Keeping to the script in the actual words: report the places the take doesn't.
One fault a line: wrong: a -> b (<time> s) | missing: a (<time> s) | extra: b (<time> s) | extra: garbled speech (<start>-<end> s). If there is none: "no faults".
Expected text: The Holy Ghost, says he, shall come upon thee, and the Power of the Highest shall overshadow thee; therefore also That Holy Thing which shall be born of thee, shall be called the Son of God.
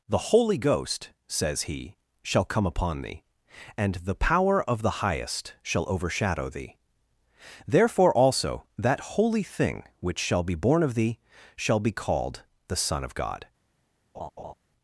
no faults